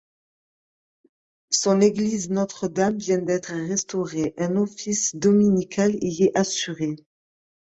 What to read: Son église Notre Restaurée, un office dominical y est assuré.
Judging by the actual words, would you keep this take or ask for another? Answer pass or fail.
fail